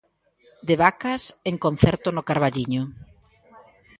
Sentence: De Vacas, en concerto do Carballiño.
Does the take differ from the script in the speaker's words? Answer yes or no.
yes